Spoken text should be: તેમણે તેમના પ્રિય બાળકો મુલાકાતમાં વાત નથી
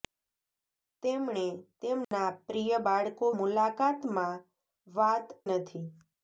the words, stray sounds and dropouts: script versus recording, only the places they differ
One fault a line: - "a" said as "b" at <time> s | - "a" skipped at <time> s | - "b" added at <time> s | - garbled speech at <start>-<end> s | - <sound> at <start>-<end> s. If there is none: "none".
- dropout at 2.0-2.1 s